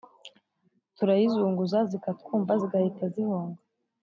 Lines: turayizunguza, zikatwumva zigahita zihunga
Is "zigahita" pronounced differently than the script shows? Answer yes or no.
no